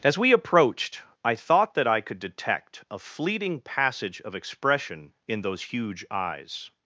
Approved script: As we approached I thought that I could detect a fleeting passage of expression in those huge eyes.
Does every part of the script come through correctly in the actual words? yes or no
yes